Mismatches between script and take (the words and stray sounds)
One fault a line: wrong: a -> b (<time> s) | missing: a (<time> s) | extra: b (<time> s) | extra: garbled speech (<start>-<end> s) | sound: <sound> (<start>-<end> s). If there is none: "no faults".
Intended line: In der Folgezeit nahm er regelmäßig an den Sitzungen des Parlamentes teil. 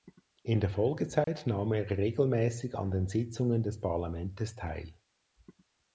sound: dropout (1.2-1.3 s)